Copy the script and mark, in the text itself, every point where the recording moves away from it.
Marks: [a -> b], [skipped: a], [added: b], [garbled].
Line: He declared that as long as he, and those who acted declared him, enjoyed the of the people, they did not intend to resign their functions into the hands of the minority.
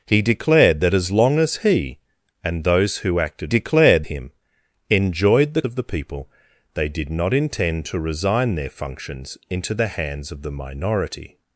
He declared that as long as he, and those who acted declared him, enjoyed the of the people, they did not intend to resign their functions into the hands of the minority.